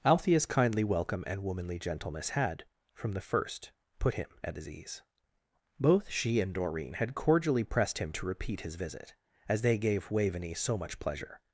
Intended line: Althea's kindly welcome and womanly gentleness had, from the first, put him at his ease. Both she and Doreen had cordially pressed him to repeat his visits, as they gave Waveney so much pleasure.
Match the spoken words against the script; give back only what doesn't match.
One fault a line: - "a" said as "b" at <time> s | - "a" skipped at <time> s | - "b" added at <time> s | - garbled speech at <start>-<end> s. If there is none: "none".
- "visits" said as "visit" at 8.8 s